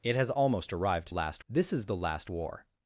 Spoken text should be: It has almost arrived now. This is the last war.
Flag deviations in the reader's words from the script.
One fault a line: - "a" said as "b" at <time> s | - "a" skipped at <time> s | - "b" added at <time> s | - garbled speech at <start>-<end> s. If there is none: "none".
- "now" said as "last" at 1.1 s